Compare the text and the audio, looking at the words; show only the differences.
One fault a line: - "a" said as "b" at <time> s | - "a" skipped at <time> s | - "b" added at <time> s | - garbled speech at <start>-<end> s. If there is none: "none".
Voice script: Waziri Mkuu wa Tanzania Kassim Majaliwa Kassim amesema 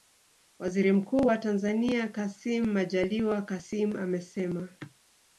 none